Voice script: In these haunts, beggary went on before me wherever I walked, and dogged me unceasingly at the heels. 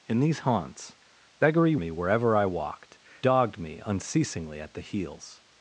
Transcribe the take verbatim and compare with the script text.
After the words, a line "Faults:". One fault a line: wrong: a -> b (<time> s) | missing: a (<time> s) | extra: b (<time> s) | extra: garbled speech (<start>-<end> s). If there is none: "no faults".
In these haunts, beggary me wherever I walked, dogged me unceasingly at the heels.
Faults:
missing: went on before (1.8 s)
missing: and (3.0 s)